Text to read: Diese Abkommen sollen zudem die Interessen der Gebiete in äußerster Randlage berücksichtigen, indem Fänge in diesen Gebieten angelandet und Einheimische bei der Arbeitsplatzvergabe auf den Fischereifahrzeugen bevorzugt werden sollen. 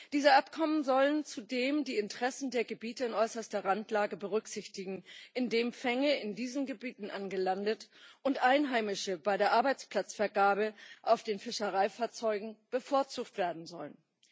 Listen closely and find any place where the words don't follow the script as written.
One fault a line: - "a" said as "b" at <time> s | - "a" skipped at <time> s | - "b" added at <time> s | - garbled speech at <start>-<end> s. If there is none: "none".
none